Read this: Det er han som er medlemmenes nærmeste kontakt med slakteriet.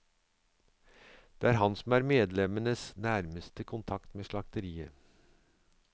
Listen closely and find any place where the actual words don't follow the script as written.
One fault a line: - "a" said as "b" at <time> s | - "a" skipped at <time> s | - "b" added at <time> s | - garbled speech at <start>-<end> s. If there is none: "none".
none